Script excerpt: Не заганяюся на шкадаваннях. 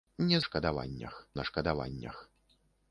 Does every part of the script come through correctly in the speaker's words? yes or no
no